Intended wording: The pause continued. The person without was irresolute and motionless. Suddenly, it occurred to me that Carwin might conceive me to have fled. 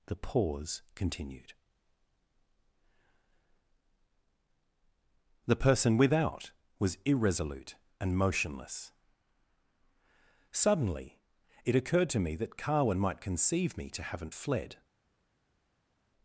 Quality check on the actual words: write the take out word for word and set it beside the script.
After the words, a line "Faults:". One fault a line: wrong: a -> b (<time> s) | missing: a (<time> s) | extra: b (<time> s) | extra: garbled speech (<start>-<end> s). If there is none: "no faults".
The pause continued. The person without was irresolute and motionless. Suddenly, it occurred to me that Carwin might conceive me to haven't fled.
Faults:
wrong: have -> haven't (14.0 s)